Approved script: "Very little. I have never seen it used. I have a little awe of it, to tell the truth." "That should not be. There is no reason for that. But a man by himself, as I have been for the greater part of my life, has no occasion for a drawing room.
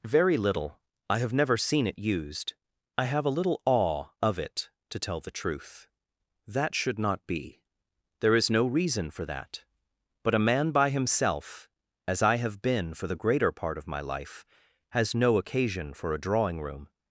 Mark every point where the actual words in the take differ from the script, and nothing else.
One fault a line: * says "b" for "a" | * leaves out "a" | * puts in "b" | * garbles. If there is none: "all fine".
all fine